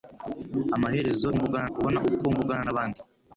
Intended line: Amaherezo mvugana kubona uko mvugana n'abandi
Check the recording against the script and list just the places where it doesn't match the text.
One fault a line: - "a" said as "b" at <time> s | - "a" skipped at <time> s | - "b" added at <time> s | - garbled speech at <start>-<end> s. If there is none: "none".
none